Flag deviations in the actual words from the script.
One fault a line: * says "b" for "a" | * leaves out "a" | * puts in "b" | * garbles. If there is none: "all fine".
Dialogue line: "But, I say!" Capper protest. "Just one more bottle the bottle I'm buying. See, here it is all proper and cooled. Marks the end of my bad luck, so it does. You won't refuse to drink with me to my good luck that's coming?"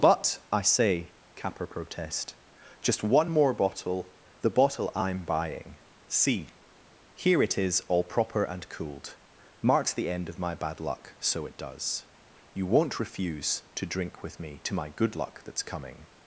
all fine